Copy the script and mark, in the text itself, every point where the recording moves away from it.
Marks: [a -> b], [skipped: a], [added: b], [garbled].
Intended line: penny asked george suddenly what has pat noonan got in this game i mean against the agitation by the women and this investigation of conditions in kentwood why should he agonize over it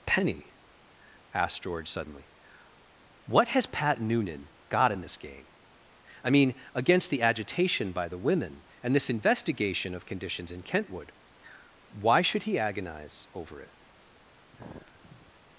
penny asked george suddenly what has pat noonan got in this game i mean against the agitation by the women and this investigation of conditions in kentwood why should he agonize over it